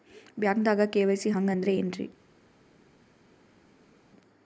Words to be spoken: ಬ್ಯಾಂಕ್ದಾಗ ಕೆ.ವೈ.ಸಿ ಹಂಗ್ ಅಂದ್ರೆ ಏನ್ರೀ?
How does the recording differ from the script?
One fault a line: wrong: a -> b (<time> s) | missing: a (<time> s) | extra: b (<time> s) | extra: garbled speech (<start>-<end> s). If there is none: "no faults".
no faults